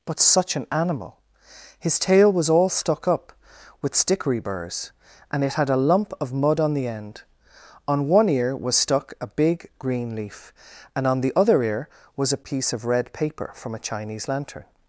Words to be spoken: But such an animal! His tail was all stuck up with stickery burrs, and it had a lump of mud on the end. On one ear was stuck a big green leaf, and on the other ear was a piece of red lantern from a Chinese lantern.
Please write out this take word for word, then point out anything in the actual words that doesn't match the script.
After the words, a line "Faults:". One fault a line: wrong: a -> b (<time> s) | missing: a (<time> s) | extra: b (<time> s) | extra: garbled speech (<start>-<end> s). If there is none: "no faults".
But such an animal! His tail was all stuck up with stickery burrs, and it had a lump of mud on the end. On one ear was stuck a big green leaf, and on the other ear was a piece of red paper from a Chinese lantern.
Faults:
wrong: lantern -> paper (13.1 s)